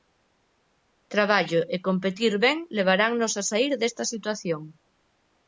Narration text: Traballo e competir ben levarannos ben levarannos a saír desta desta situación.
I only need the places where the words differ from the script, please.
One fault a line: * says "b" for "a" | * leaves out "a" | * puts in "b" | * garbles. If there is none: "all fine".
* leaves out "ben levarannos"
* leaves out "desta"